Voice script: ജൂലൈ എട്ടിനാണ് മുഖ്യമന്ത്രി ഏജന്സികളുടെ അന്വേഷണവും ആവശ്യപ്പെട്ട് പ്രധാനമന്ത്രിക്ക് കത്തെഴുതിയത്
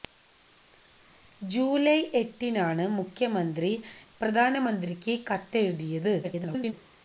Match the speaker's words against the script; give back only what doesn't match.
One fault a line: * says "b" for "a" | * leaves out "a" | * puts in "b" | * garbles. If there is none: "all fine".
* leaves out "ഏജന്സികളുടെ അന്വേഷണവും ആവശ്യപ്പെട്ട്"
* garbles